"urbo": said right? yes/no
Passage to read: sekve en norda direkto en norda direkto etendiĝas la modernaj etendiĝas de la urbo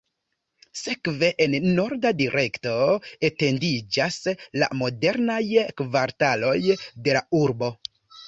yes